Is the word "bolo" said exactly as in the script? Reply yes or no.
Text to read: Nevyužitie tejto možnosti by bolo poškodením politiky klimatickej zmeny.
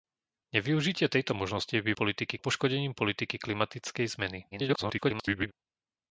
no